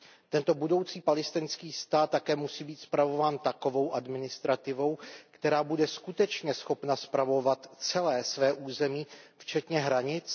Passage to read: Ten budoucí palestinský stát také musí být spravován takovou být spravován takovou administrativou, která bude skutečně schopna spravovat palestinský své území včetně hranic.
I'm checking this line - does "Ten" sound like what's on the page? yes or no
no